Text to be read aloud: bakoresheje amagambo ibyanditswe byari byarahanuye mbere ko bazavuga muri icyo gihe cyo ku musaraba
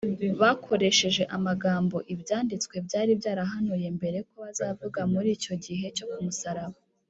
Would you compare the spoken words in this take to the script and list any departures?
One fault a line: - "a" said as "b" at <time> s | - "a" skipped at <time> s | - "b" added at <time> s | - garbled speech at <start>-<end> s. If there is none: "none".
none